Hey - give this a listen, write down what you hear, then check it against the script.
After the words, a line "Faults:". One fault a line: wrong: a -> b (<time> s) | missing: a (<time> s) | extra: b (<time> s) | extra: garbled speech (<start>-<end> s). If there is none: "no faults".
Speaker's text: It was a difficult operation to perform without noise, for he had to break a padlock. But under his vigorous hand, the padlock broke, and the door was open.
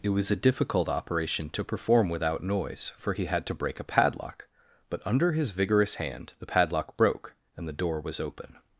It was a difficult operation to perform without noise, for he had to break a padlock. But under his vigorous hand, the padlock broke, and the door was open.
Faults:
no faults